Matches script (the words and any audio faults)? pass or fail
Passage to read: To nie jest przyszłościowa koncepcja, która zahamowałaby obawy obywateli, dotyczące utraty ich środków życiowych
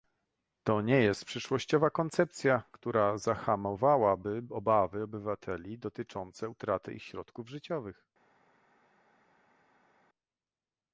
pass